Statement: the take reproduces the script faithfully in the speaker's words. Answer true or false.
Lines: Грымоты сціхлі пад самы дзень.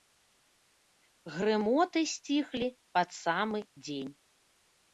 true